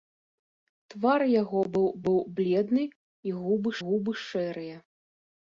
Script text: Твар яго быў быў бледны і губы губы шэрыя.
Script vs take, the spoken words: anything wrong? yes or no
no